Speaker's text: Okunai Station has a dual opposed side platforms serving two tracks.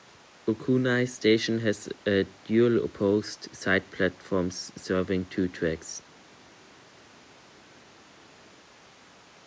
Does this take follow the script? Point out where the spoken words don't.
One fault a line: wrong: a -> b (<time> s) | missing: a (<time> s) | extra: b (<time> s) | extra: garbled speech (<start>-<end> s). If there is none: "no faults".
no faults